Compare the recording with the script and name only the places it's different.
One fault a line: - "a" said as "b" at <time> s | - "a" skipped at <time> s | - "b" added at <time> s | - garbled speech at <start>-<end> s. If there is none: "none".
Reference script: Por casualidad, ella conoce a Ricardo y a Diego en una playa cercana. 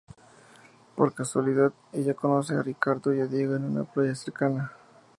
none